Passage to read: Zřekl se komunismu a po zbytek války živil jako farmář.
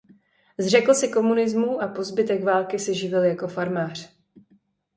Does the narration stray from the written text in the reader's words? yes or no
yes